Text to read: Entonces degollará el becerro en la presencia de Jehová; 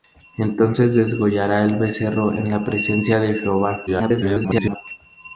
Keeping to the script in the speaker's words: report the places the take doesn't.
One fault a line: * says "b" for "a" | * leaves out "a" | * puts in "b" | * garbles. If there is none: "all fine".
* garbles